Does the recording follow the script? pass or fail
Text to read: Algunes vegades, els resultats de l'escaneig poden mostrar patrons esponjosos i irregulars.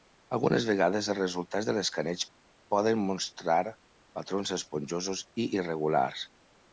pass